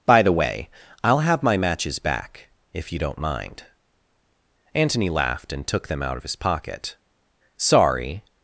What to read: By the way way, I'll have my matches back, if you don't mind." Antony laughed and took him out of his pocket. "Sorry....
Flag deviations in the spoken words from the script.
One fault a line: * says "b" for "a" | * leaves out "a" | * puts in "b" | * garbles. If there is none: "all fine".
* leaves out "way"
* says "them" for "him"